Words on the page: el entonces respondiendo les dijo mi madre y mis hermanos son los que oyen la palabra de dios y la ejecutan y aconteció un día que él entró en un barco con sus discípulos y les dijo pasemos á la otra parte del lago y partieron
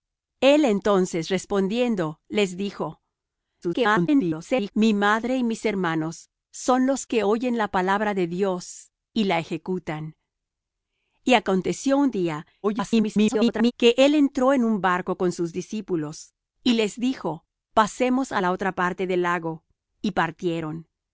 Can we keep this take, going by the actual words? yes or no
no